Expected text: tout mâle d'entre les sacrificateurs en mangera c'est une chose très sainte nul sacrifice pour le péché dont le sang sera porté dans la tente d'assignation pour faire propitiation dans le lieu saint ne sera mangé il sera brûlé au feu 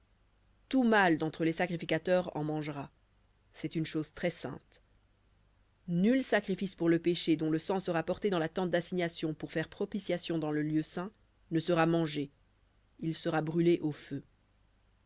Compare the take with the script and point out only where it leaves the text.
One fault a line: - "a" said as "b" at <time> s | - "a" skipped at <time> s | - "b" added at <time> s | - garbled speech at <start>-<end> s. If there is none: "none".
none